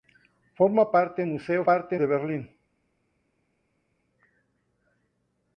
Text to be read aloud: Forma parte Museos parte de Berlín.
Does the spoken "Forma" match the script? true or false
true